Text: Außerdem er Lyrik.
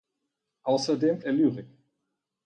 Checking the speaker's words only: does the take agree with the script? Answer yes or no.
yes